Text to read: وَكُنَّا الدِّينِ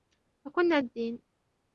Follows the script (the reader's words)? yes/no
yes